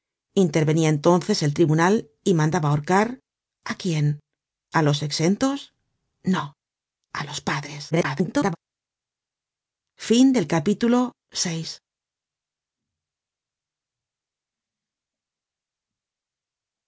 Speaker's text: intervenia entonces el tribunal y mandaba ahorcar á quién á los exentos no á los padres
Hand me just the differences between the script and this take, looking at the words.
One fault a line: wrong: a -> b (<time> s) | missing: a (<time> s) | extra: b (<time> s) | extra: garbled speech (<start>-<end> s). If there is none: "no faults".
extra: garbled speech (7.9-8.6 s)